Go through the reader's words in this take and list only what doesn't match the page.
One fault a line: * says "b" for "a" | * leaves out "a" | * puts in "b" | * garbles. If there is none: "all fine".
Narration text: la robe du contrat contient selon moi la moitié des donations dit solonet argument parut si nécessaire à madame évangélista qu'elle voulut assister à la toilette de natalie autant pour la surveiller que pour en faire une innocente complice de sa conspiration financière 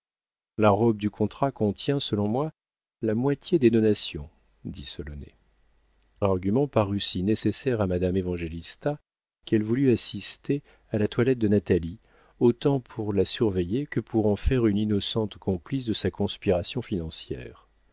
all fine